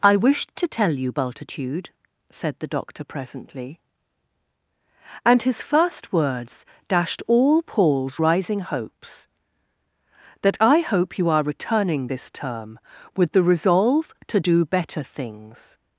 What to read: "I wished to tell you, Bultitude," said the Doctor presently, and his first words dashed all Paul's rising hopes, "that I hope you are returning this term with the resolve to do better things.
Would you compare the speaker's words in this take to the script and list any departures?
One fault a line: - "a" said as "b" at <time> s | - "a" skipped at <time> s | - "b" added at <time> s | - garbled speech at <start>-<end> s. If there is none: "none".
none